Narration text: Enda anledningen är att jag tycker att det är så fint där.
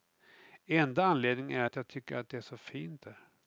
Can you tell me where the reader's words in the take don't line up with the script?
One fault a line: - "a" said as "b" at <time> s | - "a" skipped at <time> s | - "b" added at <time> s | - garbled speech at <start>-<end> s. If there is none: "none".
none